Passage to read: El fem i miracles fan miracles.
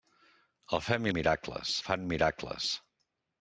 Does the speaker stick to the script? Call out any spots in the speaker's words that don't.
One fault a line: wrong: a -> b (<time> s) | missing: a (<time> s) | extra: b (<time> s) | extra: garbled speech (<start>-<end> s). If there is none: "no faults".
no faults